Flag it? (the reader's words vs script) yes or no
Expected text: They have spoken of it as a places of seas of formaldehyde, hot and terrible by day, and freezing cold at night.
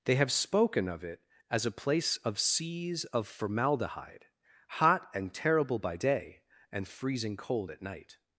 yes